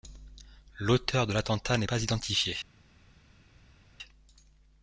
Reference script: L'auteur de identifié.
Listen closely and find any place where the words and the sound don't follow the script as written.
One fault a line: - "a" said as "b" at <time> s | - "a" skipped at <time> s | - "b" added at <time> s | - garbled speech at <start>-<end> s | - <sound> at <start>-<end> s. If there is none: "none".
- "l'attentat n'est pas" added at 1.3 s